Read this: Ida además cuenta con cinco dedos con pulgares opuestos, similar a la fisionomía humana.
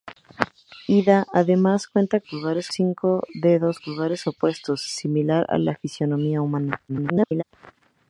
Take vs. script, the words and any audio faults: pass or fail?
fail